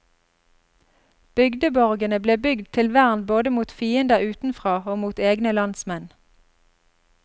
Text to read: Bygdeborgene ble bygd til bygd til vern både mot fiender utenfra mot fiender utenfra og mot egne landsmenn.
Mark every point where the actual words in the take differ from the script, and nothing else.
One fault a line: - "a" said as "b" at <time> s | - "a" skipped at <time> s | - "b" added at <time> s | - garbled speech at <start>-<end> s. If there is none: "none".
- "bygd til" skipped at 2.9 s
- "mot fiender utenfra" skipped at 4.8 s